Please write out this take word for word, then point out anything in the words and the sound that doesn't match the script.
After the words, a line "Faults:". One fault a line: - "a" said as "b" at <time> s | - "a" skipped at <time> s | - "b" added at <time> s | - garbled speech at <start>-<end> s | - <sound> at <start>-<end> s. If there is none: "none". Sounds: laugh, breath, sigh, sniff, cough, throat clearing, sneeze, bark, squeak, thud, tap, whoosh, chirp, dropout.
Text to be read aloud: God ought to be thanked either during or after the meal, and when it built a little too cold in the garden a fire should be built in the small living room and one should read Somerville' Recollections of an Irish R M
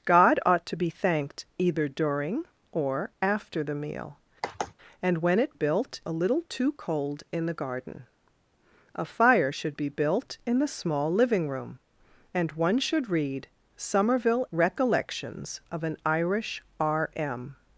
God ought to be thanked either during or after the meal, and when it built a little too cold in the garden a fire should be built in the small living room and one should read Somerville' Recollections of an Irish R M
Faults:
- sigh at 4.4-4.7 s